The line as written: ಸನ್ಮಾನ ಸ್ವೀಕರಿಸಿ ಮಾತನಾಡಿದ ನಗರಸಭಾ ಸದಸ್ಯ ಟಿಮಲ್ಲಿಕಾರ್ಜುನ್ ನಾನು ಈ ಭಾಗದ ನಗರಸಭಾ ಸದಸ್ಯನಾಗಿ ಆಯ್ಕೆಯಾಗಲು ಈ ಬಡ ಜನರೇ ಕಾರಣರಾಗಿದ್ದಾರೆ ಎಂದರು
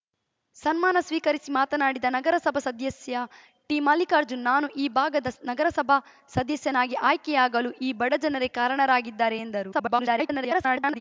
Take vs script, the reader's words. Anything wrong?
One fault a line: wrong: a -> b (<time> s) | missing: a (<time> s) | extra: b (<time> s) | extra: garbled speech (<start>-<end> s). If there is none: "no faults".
extra: garbled speech (9.7-11.0 s)